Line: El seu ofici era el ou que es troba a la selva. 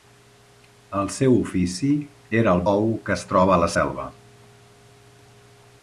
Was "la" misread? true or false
false